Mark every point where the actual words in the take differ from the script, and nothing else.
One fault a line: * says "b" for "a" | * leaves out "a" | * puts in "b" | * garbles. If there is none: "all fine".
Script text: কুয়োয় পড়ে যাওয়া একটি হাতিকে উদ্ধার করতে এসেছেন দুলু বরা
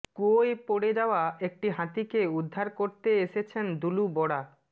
all fine